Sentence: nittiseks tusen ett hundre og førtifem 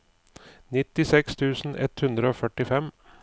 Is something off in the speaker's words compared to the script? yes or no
no